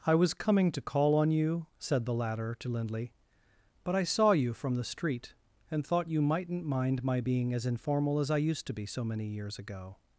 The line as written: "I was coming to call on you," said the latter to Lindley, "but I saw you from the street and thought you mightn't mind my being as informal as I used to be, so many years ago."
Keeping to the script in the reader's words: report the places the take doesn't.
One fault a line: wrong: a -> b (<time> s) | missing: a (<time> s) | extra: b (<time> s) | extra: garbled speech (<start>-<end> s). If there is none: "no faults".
no faults